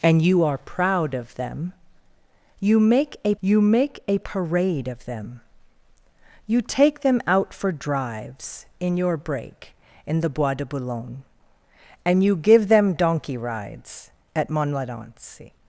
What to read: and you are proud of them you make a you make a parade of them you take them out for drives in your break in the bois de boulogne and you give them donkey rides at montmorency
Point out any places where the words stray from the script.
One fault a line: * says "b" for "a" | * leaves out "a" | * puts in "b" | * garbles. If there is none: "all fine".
all fine